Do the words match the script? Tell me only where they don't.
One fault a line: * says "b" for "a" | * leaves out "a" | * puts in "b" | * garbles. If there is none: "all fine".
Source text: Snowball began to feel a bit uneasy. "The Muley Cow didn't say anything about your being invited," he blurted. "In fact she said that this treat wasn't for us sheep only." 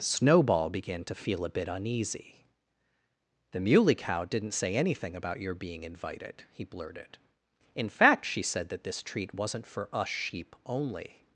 all fine